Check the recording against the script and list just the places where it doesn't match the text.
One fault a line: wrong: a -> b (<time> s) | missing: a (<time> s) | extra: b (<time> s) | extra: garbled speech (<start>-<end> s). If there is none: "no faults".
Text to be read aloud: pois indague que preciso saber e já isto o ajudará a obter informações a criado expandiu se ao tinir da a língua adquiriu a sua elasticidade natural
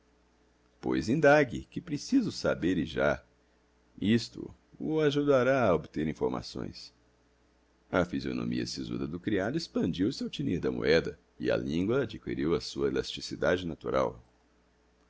extra: fisionomia sisuda do (8.0 s)
extra: moeda e (10.7 s)